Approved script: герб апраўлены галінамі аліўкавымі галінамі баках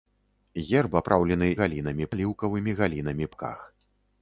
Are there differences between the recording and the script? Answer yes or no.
no